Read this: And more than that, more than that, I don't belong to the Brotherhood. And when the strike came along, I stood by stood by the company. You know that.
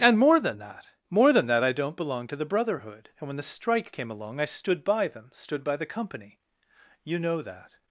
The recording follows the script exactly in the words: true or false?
false